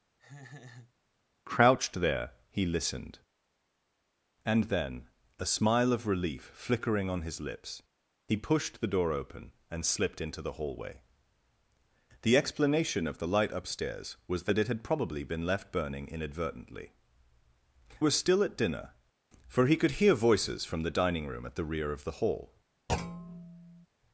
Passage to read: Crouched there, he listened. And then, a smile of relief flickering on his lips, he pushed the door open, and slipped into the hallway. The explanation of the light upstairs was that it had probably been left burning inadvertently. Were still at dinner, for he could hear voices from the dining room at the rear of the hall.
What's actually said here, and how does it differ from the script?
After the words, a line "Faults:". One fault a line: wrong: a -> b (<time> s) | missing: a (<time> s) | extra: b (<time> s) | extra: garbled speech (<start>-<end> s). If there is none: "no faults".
Crouched there, he listened. And then, a smile of relief flickering on his lips, he pushed the door open, and slipped into the hallway. The explanation of the light upstairs was that it had probably been left burning inadvertently. Were still at dinner, for he could hear voices from the dining room at the rear of the hall.
Faults:
no faults